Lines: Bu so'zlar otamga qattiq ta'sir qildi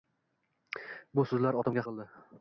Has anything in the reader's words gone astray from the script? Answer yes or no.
yes